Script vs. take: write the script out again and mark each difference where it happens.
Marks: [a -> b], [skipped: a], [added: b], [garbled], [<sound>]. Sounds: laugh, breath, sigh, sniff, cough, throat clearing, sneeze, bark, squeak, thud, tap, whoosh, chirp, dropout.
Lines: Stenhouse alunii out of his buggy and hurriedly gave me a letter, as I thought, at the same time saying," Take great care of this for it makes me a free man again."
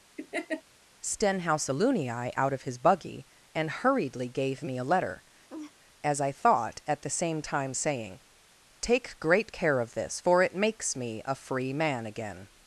[laugh] Stenhouse alunii out of his buggy and hurriedly gave me a letter, [laugh] as I thought, at the same time saying," Take great care of this for it makes me a free man again."